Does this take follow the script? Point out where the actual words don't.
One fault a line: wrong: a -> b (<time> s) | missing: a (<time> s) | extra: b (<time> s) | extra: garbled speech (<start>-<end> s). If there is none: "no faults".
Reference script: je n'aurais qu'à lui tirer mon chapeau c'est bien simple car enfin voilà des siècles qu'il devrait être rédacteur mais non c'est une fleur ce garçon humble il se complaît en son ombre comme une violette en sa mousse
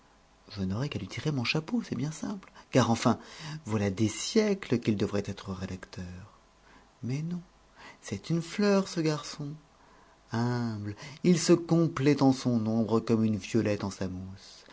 no faults